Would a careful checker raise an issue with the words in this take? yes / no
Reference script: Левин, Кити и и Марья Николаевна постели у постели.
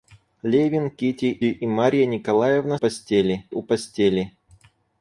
no